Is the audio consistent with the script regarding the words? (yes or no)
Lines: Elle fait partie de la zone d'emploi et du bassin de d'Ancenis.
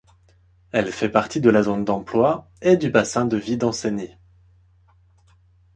no